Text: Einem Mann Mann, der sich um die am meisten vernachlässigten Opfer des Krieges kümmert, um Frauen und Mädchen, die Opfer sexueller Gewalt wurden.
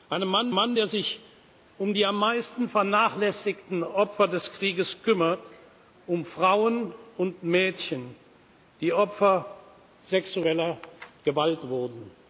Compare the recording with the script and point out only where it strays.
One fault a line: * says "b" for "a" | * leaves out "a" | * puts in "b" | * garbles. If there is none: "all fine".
all fine